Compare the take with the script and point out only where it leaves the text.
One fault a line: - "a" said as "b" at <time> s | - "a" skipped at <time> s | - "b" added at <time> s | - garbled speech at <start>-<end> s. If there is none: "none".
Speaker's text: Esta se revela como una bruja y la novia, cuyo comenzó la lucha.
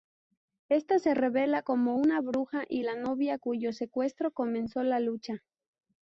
- "secuestro" added at 3.7 s